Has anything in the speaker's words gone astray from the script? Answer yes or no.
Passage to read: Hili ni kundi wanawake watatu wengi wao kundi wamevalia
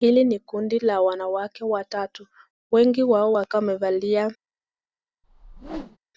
yes